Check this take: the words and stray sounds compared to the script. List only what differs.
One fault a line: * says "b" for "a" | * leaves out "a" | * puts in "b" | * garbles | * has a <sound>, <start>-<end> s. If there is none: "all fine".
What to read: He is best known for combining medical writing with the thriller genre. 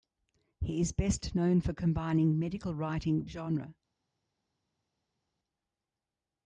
* leaves out "with the thriller"